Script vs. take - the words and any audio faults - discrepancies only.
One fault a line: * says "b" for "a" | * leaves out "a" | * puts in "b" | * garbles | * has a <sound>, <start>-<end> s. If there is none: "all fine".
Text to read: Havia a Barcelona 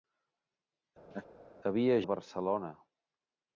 * has a laugh, 1.1-1.3 s